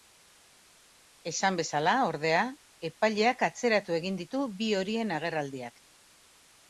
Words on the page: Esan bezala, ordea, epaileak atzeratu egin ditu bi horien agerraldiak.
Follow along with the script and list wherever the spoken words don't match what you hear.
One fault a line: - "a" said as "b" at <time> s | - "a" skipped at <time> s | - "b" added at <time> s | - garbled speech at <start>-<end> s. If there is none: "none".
none